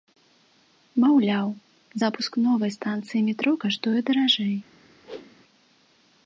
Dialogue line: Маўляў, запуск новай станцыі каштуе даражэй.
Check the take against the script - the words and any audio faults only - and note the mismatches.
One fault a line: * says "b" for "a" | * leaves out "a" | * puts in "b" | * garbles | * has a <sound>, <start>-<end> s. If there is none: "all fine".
* puts in "метро"
* has a whoosh, 5.0-5.4 s